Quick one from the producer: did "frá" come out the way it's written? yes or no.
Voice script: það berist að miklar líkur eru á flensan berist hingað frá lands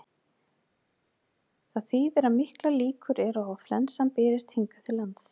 no